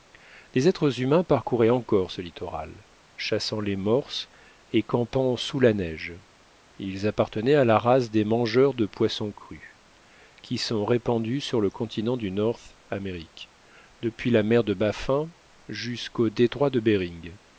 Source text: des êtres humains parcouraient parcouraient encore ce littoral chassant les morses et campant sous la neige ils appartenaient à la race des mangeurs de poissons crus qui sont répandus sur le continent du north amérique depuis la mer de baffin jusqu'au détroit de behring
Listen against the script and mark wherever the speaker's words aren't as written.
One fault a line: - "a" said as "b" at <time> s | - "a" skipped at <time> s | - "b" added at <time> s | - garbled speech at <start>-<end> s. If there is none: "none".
- "parcouraient" skipped at 1.7 s